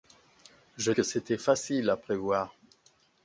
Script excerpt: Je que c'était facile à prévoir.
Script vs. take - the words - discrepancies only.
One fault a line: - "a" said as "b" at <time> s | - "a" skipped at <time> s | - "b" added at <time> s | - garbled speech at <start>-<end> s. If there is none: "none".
none